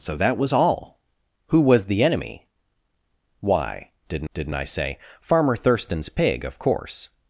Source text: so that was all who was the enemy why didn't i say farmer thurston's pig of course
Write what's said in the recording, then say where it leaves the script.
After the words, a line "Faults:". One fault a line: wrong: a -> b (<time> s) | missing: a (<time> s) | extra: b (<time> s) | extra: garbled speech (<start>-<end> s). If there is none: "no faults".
so that was all who was the enemy why didn't didn't i say farmer thurston's pig of course
Faults:
extra: didn't (4.3 s)